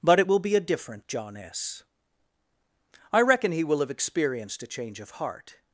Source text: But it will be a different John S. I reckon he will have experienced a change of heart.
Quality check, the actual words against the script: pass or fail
pass